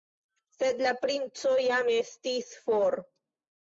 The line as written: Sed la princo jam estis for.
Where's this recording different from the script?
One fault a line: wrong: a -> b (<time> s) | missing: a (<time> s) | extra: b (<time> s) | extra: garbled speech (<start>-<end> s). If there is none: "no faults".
no faults